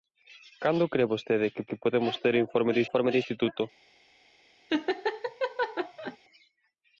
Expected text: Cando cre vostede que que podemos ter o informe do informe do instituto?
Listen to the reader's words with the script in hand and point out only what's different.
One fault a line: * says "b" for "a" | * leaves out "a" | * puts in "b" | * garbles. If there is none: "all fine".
all fine